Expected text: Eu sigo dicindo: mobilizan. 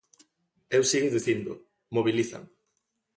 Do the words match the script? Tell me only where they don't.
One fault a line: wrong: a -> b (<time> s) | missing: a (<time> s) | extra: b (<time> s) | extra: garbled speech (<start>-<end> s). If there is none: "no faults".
no faults